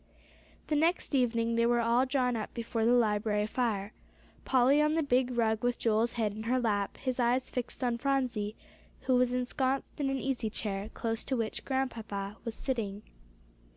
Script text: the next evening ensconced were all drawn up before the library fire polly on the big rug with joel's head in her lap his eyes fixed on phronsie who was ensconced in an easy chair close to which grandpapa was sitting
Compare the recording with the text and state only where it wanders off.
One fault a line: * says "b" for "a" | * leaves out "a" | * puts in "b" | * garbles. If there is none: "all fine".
* says "they" for "ensconced"